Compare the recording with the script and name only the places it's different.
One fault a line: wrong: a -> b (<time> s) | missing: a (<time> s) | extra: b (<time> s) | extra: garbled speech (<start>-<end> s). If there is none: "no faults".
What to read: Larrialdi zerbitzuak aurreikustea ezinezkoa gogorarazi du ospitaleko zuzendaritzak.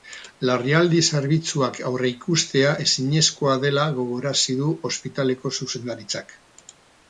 extra: dela (3.7 s)